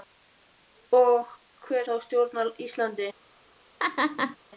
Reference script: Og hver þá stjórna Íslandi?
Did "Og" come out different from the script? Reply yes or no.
no